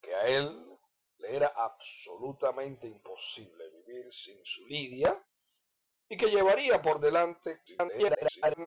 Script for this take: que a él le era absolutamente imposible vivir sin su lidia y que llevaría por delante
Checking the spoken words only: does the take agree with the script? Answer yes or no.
no